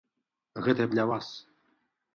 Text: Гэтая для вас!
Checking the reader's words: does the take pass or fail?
pass